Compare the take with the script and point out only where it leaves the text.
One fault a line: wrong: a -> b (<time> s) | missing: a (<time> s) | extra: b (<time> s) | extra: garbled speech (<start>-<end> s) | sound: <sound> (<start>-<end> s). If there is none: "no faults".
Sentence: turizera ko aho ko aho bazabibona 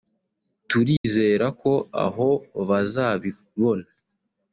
sound: dropout (1.0-1.0 s)
missing: ko aho (2.3 s)